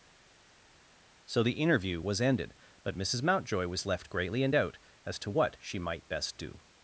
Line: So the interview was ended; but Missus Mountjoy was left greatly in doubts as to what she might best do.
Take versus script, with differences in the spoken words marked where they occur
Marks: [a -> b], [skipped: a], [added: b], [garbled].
So the interview was ended; but Missus Mountjoy was left greatly in [doubts -> doubt] as to what she might best do.